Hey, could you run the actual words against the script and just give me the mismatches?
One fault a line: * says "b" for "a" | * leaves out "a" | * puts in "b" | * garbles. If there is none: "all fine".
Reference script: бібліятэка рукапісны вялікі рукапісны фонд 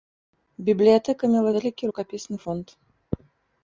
* says "мела" for "рукапісны"